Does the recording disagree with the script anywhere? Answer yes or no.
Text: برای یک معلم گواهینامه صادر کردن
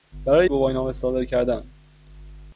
yes